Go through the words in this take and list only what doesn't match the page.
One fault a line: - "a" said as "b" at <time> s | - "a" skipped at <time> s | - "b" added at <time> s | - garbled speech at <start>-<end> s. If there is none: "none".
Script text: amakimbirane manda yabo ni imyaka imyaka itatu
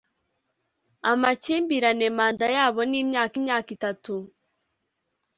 none